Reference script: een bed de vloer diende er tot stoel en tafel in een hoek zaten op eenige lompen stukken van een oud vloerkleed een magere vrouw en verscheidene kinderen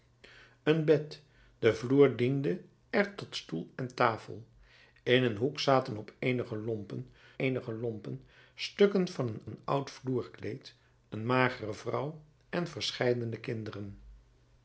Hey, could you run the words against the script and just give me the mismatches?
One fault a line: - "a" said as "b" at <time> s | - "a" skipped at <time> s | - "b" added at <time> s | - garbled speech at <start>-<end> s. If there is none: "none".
- "eenige lompen" added at 7.4 s
- "een" added at 9.4 s